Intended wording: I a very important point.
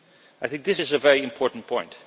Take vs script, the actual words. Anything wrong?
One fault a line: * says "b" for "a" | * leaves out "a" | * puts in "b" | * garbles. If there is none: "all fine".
* puts in "think this is"